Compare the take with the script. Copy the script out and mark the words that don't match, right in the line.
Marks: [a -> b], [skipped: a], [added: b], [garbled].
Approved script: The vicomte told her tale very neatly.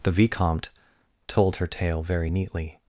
The vicomte told her tale very neatly.